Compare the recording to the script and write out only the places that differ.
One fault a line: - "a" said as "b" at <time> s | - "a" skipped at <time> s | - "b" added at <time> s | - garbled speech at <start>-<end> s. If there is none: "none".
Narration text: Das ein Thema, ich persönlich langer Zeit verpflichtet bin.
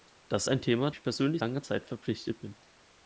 none